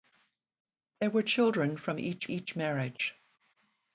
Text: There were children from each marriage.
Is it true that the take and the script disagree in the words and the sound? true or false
true